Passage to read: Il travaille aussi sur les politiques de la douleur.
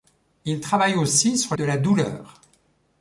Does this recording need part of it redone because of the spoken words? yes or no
yes